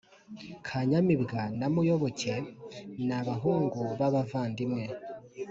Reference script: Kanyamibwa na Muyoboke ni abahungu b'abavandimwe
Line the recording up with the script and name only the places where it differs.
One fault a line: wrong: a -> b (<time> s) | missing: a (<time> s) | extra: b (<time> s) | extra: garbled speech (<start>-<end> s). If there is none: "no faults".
no faults